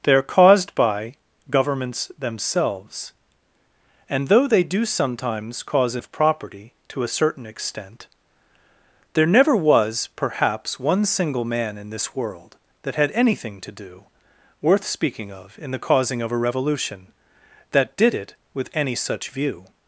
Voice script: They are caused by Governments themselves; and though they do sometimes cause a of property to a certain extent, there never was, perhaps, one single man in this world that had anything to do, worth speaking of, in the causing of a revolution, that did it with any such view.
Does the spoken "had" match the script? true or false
true